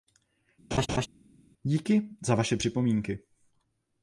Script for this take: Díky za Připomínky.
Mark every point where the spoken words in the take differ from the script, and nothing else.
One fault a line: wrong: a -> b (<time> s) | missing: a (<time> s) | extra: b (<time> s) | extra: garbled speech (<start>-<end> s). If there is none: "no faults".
extra: Vaše (2.3 s)